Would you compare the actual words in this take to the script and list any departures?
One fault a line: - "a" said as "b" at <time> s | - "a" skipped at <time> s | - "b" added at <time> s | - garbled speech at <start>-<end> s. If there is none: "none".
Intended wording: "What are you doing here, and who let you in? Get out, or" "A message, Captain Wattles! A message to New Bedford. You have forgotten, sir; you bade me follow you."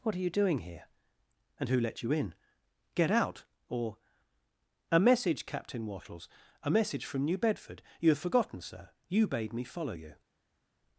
- "to" said as "from" at 7.0 s